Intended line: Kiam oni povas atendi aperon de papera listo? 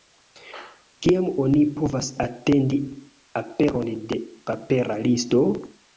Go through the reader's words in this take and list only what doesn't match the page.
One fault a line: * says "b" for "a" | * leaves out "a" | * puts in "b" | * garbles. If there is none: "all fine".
all fine